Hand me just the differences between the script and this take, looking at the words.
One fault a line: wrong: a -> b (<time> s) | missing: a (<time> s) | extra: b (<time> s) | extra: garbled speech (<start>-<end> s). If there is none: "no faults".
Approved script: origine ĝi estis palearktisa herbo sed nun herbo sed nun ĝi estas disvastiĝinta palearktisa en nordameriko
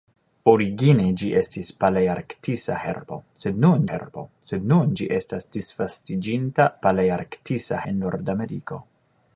no faults